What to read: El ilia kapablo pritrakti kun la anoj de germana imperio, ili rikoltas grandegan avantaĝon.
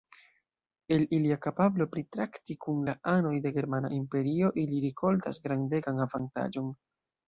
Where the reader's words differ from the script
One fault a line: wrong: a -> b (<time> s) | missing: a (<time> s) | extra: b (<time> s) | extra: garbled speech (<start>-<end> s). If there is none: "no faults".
no faults